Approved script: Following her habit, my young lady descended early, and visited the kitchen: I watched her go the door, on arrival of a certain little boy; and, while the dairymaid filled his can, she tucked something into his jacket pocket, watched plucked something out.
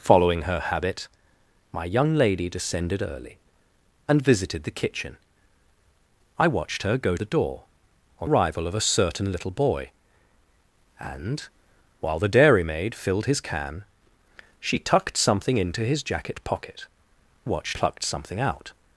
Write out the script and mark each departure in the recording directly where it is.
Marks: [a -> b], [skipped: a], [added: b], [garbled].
Following her habit, my young lady descended early, and visited the kitchen: I watched her go the door, on arrival of a certain little boy; and, while the dairymaid filled his can, she tucked something into his jacket pocket, watched plucked something out.